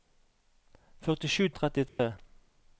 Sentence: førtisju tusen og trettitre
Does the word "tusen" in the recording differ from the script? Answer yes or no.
yes